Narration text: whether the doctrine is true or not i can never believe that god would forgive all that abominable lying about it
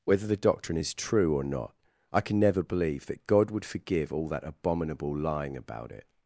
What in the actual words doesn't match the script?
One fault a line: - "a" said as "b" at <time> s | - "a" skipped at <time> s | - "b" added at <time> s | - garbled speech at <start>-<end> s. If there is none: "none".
none